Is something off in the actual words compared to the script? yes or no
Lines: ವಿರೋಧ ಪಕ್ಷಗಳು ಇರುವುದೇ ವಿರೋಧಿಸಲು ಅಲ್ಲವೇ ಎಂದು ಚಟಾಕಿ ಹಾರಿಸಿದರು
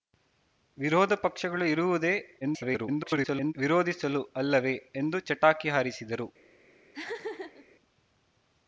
yes